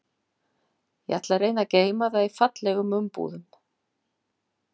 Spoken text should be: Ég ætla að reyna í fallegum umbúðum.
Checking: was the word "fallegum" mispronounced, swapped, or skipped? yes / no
no